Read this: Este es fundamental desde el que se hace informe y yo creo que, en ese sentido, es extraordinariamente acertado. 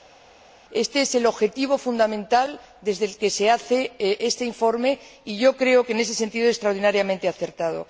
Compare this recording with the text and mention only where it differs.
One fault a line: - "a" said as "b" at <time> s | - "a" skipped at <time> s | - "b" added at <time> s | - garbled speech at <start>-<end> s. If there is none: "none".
- "el objetivo" added at 1.1 s
- "este" added at 4.0 s